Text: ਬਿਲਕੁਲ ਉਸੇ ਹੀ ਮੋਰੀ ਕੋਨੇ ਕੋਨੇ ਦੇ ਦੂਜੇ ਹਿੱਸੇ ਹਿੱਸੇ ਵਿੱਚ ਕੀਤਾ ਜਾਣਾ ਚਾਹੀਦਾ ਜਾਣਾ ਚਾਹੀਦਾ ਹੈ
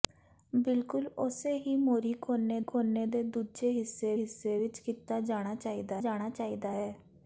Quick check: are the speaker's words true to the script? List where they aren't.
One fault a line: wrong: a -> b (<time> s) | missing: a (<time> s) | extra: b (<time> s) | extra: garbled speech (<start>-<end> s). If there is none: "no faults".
no faults